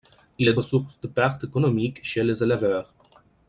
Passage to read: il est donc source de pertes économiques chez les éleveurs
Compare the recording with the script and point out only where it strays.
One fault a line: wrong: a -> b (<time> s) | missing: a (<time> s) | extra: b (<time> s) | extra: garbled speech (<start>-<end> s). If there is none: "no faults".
missing: donc (0.5 s)